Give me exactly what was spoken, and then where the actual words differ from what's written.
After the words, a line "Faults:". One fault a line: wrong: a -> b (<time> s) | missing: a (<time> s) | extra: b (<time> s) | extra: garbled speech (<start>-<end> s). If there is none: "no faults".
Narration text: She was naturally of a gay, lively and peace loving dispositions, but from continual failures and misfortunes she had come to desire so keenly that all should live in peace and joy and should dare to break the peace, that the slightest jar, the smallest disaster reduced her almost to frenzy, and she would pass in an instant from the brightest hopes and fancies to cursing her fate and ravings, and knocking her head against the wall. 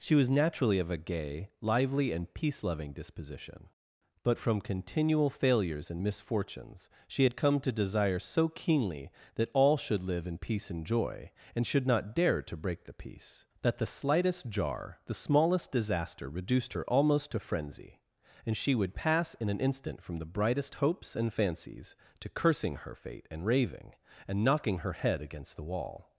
She was naturally of a gay, lively and peace loving disposition, but from continual failures and misfortunes she had come to desire so keenly that all should live in peace and joy and should not dare to break the peace, that the slightest jar, the smallest disaster reduced her almost to frenzy, and she would pass in an instant from the brightest hopes and fancies to cursing her fate and raving, and knocking her head against the wall.
Faults:
wrong: dispositions -> disposition (2.9 s)
extra: not (11.9 s)
wrong: ravings -> raving (23.5 s)